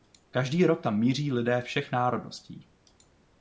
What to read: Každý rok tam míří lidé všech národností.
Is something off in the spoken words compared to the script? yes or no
no